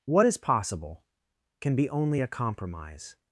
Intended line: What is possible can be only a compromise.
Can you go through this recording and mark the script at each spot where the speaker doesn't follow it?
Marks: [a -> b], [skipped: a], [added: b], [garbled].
What is possible can be only a compromise.